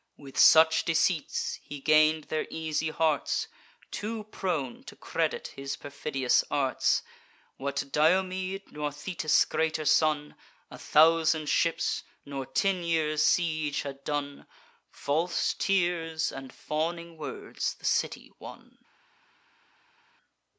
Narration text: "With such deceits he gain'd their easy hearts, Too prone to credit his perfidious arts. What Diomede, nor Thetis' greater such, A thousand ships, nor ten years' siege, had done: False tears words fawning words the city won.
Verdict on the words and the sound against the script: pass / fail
fail